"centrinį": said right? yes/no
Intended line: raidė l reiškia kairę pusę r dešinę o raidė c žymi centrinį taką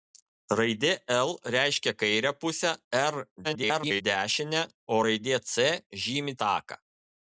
no